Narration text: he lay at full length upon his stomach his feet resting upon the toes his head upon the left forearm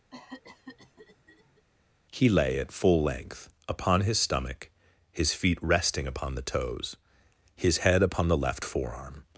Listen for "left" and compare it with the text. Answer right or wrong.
right